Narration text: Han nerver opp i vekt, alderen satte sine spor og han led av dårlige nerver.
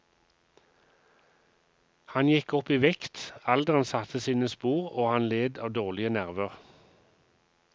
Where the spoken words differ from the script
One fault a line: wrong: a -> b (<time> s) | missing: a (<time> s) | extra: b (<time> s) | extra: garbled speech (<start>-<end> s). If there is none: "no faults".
wrong: nerver -> gikk (2.3 s)